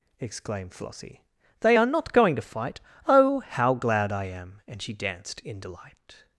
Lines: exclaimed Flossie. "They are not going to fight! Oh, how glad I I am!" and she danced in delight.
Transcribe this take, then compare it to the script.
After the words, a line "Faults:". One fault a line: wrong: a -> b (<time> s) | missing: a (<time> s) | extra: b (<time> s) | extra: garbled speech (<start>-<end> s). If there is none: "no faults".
exclaimed Flossie. "They are not going to fight! Oh, how glad I am!" and she danced in delight.
Faults:
missing: I (4.2 s)